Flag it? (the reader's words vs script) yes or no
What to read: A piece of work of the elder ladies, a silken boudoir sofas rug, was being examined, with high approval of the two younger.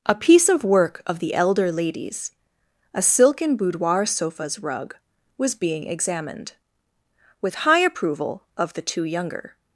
no